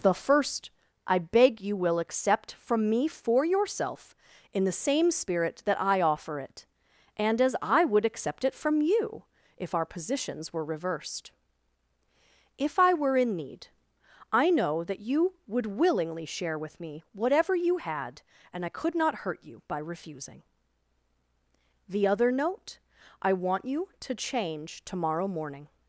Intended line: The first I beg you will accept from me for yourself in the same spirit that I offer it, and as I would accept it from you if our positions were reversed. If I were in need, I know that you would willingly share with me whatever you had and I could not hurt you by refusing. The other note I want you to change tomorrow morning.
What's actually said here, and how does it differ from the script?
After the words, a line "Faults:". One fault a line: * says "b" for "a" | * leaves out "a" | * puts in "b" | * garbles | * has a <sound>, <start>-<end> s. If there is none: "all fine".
The first I beg you will accept from me for yourself in the same spirit that I offer it, and as I would accept it from you if our positions were reversed. If I were in need, I know that you would willingly share with me whatever you had and I could not hurt you by refusing. The other note I want you to change tomorrow morning.
Faults:
all fine